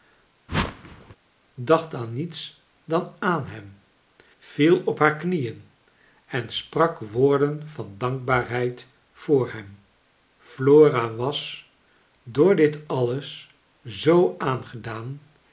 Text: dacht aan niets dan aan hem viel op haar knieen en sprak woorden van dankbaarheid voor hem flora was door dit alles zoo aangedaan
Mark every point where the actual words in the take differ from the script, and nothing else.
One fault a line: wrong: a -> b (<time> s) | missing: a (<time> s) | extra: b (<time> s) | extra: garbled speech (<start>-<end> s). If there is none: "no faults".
no faults